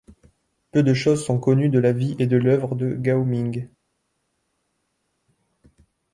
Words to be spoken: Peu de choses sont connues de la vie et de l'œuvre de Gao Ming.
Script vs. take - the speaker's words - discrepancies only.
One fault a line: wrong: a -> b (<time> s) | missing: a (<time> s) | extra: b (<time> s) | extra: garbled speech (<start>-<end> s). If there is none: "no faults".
no faults